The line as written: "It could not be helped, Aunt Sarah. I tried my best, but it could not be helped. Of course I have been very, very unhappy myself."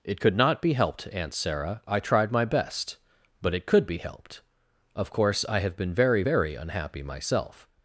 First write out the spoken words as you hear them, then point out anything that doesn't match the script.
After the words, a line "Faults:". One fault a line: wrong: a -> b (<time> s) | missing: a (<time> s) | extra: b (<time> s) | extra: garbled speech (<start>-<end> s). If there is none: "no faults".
"It could not be helped, Aunt Sarah. I tried my best, but it could be helped. Of course I have been very, very unhappy myself."
Faults:
missing: not (3.8 s)